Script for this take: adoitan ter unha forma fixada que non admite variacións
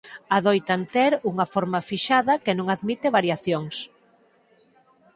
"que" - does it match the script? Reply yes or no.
yes